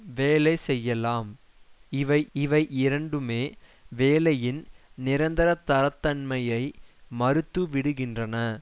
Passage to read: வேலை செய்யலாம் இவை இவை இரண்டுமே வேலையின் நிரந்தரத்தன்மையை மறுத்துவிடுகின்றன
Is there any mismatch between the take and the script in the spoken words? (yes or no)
no